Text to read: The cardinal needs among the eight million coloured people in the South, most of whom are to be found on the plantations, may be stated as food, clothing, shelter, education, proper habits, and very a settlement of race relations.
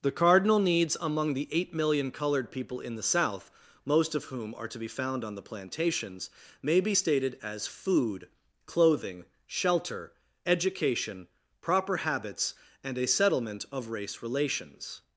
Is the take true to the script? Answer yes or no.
no